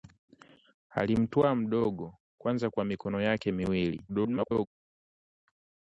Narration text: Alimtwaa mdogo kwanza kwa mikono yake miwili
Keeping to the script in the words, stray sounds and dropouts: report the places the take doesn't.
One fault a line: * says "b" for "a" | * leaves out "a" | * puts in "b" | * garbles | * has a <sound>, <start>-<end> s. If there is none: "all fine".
* garbles